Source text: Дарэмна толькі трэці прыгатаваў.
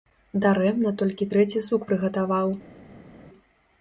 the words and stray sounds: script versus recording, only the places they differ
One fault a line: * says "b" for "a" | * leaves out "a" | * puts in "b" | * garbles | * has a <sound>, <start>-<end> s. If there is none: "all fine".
* puts in "сук"